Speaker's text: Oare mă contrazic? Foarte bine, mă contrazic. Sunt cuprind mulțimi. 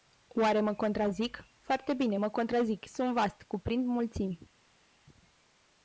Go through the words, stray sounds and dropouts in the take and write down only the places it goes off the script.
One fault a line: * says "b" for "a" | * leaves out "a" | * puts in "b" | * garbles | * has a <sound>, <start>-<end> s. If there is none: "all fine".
* puts in "vast"